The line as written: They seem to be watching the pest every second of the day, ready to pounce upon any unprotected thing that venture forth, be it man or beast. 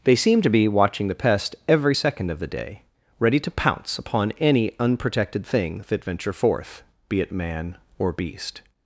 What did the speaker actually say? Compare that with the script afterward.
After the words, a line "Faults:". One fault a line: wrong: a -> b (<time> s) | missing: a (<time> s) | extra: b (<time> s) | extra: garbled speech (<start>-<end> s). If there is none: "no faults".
They seem to be watching the pest every second of the day, ready to pounce upon any unprotected thing that venture forth, be it man or beast.
Faults:
no faults